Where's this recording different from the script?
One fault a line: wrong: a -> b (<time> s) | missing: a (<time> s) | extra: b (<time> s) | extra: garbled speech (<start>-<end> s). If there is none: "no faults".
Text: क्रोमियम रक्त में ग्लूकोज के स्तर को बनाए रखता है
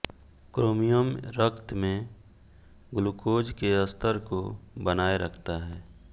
no faults